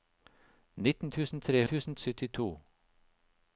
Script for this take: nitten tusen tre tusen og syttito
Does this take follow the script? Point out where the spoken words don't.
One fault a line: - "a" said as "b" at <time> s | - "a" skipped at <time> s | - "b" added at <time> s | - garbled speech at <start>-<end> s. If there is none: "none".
none